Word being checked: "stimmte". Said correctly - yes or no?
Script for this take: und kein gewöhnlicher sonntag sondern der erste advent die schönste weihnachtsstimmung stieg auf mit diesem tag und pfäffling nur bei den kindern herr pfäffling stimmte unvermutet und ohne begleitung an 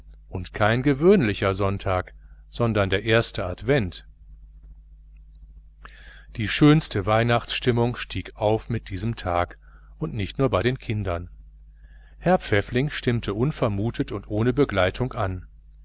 yes